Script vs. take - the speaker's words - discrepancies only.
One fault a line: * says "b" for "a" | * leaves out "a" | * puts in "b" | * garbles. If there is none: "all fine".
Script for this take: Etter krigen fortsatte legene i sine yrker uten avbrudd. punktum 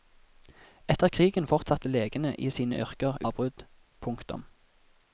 * leaves out "uten"